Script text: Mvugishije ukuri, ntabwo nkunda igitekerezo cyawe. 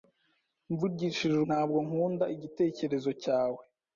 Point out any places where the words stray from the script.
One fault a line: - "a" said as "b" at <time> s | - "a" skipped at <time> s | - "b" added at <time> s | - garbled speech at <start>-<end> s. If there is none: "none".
- "ukuri" skipped at 1.4 s